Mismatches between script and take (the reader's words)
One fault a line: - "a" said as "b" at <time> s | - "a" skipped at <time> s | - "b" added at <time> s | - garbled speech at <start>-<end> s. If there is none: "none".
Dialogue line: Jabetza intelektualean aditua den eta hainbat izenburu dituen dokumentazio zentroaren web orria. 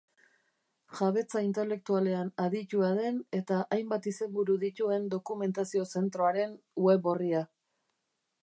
none